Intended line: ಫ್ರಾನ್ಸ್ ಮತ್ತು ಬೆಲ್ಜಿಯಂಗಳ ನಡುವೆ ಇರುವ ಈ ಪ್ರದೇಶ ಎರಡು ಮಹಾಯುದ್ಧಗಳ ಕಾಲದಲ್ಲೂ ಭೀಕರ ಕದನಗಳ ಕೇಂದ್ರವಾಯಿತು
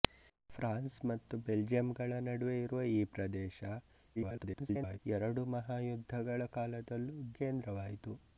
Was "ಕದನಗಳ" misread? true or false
true